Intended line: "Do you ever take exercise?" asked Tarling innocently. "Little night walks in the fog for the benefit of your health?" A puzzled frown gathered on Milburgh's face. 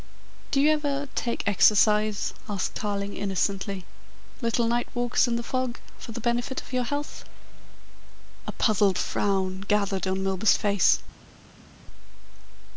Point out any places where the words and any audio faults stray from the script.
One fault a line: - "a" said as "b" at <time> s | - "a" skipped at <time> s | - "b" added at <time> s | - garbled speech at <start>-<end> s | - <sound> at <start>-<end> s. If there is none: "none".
none